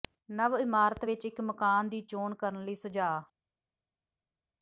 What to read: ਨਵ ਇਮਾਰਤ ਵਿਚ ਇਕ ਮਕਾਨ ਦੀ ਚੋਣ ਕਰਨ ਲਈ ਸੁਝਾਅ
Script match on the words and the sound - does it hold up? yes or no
yes